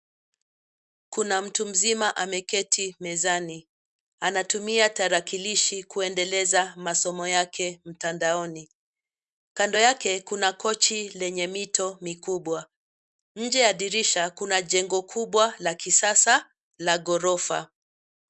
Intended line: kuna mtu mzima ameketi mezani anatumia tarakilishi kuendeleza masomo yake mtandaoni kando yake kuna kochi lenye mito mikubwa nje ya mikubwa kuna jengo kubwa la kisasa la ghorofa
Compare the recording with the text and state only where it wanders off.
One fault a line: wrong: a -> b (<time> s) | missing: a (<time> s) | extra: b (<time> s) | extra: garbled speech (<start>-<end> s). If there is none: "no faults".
wrong: mikubwa -> dirisha (13.7 s)